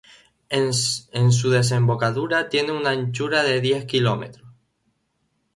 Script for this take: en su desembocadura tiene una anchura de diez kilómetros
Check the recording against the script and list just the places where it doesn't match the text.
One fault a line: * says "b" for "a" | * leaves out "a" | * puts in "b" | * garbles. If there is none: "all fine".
all fine